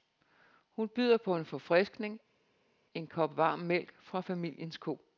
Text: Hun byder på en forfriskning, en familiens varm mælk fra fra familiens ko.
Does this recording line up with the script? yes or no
no